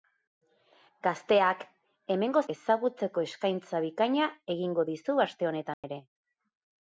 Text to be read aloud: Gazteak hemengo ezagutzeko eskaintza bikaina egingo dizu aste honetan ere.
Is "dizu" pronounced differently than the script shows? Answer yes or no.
no